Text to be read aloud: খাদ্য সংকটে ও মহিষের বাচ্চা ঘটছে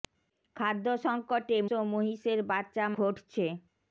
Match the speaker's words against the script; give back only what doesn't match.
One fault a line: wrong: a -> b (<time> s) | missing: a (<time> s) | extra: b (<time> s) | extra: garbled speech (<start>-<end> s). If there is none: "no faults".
no faults